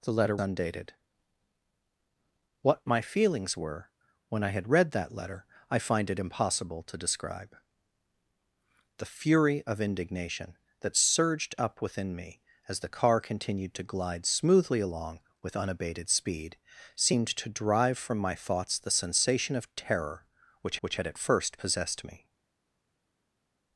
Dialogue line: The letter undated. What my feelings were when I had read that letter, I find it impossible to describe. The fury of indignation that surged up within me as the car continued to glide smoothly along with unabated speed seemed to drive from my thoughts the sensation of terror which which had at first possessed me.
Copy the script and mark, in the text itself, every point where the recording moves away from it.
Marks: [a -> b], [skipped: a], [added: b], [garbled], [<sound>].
The letter undated. What my feelings were when I had read that letter, I find it impossible to describe. The fury of indignation that surged up within me as the car continued to glide smoothly along with unabated speed seemed to drive from my thoughts the sensation of terror which which had at first possessed me.